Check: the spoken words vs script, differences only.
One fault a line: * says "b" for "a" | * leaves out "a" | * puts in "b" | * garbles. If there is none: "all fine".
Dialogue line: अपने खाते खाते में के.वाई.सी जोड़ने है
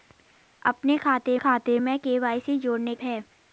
all fine